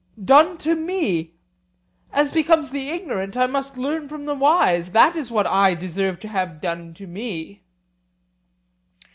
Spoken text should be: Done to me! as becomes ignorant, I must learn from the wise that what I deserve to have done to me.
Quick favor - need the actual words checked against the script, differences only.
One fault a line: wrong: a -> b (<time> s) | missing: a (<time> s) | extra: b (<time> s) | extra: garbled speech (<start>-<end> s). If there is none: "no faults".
extra: the (2.7 s)
extra: is (5.2 s)